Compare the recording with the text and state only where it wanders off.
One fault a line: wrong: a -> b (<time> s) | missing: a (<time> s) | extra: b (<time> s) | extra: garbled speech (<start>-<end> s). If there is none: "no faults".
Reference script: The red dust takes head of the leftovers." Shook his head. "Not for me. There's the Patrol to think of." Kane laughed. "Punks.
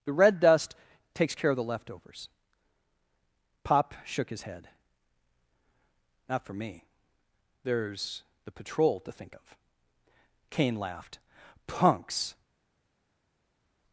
wrong: head -> care (1.4 s)
extra: Pop (3.6 s)